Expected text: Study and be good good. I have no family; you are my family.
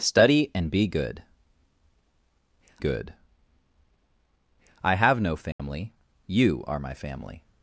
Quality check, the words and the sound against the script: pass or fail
fail